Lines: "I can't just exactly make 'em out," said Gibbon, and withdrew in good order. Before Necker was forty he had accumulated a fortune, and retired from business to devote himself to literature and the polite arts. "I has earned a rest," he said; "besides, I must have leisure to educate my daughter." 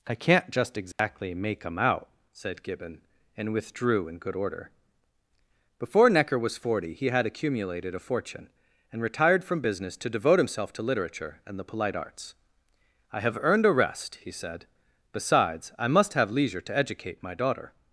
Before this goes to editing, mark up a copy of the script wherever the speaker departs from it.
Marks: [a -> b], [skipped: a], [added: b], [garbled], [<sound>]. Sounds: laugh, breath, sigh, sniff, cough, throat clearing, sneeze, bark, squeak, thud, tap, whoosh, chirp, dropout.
"I can't just exactly [dropout] make 'em out," said Gibbon, and withdrew in good order. Before Necker was forty he had accumulated a fortune, and retired from business to devote himself to literature and the polite arts. "I [has -> have] earned a rest," he said; "besides, I must have leisure to educate my daughter."